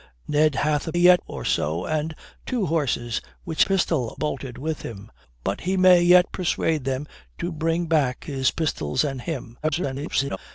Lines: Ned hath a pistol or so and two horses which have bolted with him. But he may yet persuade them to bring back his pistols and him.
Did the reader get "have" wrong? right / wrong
wrong